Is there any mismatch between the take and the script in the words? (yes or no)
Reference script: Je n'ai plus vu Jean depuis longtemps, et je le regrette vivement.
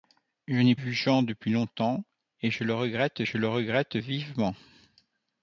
yes